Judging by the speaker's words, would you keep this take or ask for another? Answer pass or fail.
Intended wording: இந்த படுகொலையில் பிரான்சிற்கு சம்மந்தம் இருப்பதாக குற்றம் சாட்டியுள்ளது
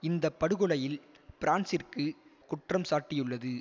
fail